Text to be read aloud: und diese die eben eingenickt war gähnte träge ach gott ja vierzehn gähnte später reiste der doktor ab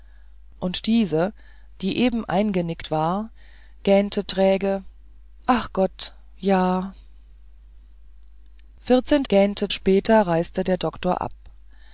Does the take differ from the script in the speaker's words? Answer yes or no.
no